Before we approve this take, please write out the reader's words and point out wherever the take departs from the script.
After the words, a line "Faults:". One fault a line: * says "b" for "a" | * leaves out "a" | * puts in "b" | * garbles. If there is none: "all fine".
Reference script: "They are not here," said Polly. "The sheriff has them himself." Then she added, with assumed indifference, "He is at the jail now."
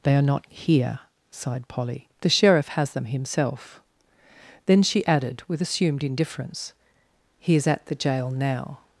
"They are not here," sighed Polly. "The sheriff has them himself." Then she added, with assumed indifference, "He is at the jail now."
Faults:
* says "sighed" for "said"